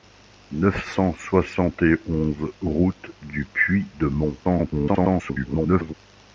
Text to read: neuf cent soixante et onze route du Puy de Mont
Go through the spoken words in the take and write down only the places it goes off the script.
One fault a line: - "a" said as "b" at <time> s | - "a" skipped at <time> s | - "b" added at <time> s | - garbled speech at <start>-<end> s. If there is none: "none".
- garbled speech at 4.4-5.9 s